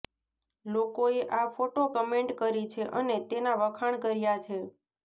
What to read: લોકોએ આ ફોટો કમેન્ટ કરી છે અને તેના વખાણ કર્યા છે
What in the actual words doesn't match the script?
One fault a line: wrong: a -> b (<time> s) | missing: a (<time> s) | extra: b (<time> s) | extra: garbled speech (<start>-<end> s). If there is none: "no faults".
no faults